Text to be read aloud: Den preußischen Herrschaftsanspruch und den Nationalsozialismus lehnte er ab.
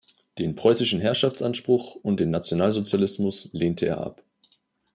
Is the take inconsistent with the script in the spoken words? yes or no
no